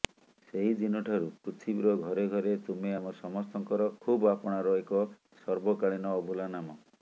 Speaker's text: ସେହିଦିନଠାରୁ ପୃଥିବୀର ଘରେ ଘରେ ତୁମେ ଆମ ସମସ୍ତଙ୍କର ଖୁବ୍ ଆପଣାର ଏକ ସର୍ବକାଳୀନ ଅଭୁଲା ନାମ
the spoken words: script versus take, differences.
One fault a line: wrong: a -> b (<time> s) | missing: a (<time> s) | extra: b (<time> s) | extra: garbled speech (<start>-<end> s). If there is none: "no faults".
no faults